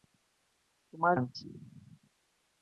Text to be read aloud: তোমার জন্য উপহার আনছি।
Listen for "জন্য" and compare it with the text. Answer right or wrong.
wrong